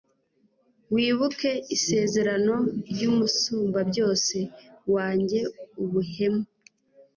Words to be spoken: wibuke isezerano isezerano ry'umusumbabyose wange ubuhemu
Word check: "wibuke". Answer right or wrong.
right